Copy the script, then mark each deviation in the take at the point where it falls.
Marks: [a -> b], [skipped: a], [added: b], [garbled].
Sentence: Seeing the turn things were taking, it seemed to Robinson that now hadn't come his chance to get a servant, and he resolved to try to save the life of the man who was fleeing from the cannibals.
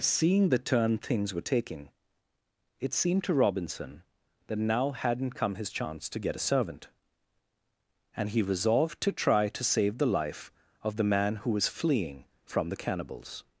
Seeing the turn things were taking, it seemed to Robinson that now hadn't come his chance to get a servant, and he resolved to try to save the life of the man who was fleeing from the cannibals.